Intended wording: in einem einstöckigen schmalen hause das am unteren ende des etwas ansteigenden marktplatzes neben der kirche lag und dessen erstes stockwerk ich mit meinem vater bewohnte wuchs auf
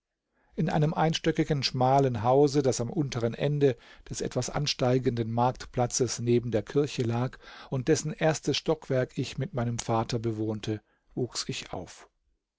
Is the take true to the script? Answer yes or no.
no